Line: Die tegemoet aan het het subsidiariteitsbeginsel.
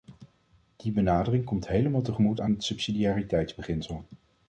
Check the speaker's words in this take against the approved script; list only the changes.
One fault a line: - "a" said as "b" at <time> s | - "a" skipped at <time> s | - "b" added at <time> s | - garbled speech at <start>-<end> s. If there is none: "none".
- "benadering komt helemaal" added at 0.9 s
- "het" skipped at 2.6 s